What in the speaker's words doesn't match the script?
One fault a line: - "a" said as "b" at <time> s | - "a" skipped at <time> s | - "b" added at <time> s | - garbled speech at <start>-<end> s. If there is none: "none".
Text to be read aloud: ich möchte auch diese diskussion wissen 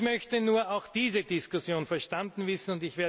- "nur" added at 0.4 s
- "verstanden" added at 1.8 s